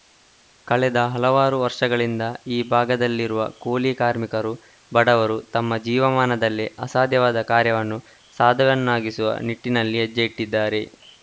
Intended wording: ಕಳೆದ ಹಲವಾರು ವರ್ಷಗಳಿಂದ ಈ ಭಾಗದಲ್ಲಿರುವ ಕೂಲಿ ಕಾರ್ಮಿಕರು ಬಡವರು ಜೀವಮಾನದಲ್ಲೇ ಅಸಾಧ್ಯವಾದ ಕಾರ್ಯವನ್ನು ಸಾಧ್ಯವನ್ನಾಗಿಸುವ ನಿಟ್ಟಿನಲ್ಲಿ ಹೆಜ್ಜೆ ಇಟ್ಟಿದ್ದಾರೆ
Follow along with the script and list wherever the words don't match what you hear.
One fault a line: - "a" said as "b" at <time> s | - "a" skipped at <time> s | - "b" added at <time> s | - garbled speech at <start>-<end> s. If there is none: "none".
- "ತಮ್ಮ" added at 5.5 s